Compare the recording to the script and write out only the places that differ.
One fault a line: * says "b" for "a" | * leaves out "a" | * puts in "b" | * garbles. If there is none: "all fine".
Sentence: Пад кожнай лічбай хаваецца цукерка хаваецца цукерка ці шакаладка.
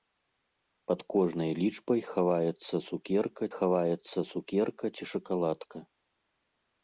all fine